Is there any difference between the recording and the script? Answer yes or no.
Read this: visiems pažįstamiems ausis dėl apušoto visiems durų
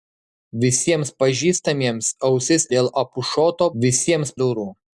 no